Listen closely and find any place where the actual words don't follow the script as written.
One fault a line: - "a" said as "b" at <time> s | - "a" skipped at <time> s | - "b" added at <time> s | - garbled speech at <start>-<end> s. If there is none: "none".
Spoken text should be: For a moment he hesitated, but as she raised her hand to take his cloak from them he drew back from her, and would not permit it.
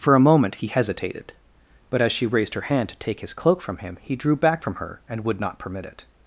- "them" said as "him" at 3.8 s